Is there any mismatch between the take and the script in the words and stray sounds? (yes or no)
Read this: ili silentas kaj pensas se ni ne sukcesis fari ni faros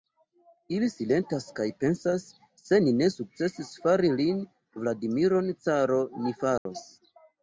yes